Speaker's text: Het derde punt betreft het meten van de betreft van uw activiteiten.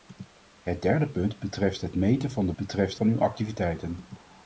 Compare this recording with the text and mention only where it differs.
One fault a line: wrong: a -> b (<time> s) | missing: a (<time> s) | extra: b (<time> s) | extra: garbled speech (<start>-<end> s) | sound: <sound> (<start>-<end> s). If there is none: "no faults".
no faults